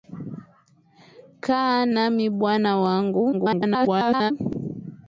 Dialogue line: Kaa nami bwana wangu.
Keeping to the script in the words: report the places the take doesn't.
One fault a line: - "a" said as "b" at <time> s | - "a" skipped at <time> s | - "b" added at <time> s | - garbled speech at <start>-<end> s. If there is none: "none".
- garbled speech at 3.3-4.3 s